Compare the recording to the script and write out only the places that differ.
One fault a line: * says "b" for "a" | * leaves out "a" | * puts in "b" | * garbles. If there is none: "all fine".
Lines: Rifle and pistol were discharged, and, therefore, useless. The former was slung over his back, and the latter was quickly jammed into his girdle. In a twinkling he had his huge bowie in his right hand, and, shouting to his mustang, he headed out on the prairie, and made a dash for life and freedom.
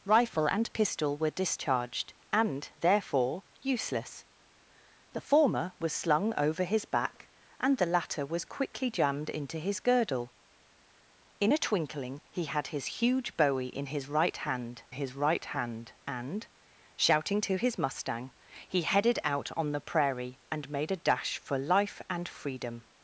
* puts in "his right hand"